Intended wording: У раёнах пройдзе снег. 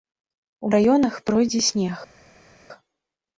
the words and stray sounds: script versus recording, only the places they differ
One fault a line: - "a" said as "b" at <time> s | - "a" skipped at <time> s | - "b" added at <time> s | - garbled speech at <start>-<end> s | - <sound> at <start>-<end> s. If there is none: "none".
none